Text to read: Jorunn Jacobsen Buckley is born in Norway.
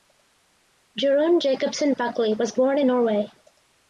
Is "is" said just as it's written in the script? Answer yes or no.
no